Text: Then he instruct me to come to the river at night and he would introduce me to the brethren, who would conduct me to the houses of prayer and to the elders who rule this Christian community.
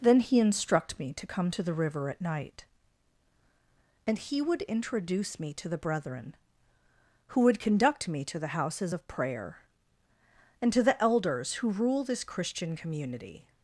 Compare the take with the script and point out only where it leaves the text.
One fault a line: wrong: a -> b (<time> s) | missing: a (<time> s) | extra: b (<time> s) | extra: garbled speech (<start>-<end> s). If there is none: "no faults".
no faults